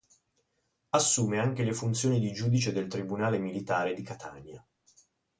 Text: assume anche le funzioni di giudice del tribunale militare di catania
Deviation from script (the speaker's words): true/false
false